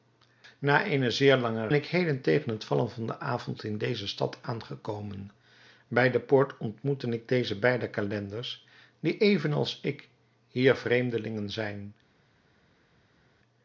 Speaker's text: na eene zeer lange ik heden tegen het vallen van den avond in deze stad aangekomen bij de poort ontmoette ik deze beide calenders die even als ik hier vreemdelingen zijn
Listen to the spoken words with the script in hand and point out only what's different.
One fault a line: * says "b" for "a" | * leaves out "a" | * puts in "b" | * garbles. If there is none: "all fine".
all fine